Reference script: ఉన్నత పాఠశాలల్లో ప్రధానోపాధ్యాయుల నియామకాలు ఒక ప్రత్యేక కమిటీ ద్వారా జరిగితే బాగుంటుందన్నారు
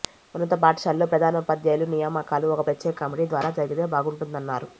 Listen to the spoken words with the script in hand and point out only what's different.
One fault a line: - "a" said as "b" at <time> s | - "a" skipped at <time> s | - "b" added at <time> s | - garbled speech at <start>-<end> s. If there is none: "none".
none